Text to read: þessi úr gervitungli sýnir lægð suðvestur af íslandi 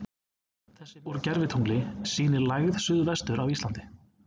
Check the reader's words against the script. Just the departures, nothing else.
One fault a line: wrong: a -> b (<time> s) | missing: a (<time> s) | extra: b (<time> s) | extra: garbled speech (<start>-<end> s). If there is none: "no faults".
no faults